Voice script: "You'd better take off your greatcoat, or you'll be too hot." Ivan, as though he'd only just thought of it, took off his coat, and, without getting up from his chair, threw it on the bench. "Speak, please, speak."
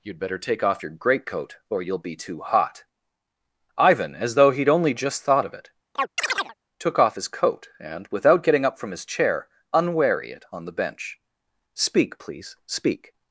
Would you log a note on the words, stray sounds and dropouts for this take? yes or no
yes